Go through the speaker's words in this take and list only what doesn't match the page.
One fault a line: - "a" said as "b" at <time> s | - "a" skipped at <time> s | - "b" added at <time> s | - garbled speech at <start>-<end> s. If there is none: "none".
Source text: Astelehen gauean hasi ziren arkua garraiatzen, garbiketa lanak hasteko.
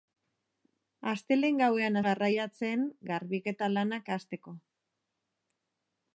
- "hasi ziren arkua" skipped at 2.0 s